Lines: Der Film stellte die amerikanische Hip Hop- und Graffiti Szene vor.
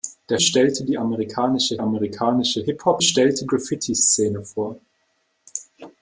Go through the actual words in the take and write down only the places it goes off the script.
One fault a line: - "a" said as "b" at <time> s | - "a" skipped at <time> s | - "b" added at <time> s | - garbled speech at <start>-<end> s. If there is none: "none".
- "Film" skipped at 0.4 s
- "amerikanische" added at 1.8 s
- "und" said as "stellte" at 3.0 s